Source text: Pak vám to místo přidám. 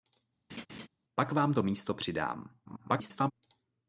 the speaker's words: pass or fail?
fail